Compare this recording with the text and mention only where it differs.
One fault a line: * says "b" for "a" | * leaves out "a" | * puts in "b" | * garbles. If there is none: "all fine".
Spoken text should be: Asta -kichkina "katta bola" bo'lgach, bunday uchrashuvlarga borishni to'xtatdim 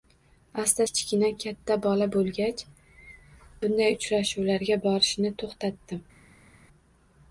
all fine